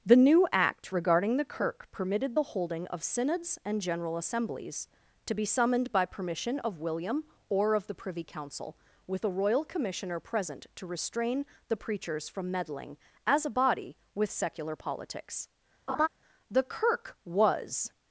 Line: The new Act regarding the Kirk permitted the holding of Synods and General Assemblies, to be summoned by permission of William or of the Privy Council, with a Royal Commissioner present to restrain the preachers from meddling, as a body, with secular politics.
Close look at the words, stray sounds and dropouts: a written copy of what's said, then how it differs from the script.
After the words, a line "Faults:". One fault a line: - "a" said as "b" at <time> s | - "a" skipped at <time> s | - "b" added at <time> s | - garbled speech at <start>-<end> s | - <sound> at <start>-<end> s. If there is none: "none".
The new Act regarding the Kirk permitted the holding of Synods and General Assemblies, to be summoned by permission of William or of the Privy Council, with a Royal Commissioner present to restrain the preachers from meddling, as a body, with secular politics. The Kirk was
Faults:
- laugh at 15.9-16.1 s
- "The Kirk was" added at 16.5 s